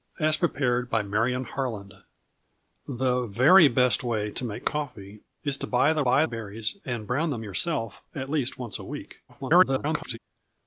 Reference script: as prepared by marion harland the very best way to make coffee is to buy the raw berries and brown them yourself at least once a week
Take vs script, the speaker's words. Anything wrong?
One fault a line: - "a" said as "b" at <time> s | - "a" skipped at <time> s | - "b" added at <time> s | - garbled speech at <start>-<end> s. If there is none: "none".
- "raw" said as "buy" at 6.0 s
- garbled speech at 9.3-10.2 s